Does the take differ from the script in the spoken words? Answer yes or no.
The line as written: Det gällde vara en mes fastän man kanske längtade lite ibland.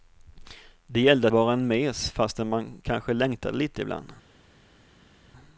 no